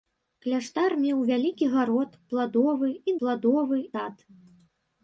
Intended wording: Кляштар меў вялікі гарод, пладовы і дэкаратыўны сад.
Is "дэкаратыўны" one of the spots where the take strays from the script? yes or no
yes